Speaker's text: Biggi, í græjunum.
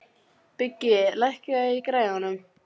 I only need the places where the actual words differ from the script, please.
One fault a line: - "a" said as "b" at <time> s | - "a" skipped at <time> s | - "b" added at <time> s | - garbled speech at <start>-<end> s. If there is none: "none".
- "lækkaðu" added at 1.2 s